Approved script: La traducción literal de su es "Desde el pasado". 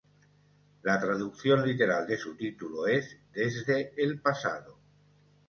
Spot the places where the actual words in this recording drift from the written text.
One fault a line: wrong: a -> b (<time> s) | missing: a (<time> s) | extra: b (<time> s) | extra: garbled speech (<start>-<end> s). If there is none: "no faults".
extra: título (2.4 s)